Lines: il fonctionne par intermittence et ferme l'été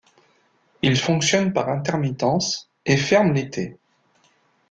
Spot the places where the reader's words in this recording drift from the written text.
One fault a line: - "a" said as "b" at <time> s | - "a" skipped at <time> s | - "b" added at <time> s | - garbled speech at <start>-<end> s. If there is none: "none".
none